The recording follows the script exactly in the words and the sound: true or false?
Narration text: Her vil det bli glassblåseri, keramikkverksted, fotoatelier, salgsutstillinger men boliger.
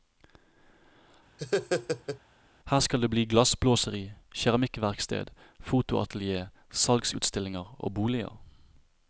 false